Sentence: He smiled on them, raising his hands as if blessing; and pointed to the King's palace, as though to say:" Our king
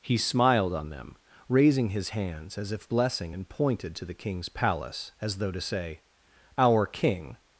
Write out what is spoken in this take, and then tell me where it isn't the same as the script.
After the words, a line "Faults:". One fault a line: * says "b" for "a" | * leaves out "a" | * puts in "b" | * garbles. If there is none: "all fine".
He smiled on them, raising his hands as if blessing; and pointed to the King's palace, as though to say:" Our king
Faults:
all fine